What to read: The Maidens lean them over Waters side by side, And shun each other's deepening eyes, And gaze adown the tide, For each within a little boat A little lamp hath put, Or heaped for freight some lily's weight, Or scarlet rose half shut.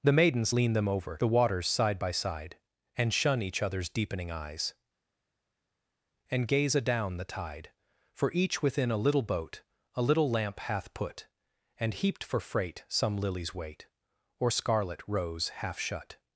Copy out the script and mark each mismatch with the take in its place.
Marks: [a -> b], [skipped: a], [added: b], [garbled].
The Maidens lean them over [added: The] Waters side by side, And shun each other's deepening eyes, And gaze adown the tide, For each within a little boat A little lamp hath put, [Or -> And] heaped for freight some lily's weight, Or scarlet rose half shut.